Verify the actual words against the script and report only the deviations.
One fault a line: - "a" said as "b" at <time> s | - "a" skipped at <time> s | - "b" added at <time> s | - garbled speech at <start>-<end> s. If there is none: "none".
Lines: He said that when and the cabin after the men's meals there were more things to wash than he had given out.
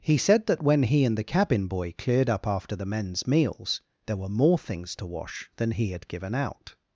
- "he" added at 0.8 s
- "boy cleared up" added at 1.7 s